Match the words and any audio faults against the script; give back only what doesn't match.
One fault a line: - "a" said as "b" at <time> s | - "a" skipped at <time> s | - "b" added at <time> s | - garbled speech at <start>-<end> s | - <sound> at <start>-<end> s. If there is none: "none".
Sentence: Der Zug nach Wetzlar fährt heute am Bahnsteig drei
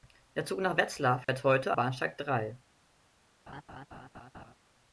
- dropout at 1.2-1.3 s
- "am" skipped at 1.8 s
- laugh at 3.5-4.5 s